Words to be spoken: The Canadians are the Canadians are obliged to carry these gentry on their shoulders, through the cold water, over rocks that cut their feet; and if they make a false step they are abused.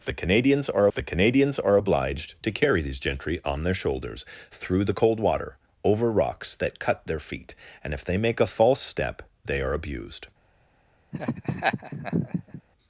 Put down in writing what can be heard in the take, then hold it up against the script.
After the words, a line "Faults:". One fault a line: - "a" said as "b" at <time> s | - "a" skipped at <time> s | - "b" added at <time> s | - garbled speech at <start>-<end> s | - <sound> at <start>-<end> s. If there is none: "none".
The Canadians are the Canadians are obliged to carry these gentry on their shoulders, through the cold water, over rocks that cut their feet; and if they make a false step they are abused.
Faults:
- laugh at 11.1-12.6 s